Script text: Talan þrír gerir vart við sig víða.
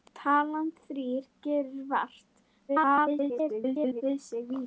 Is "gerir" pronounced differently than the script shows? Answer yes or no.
no